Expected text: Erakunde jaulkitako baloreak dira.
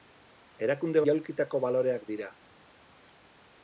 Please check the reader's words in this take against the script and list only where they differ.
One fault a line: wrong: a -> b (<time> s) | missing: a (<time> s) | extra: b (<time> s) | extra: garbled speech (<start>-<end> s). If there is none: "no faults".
no faults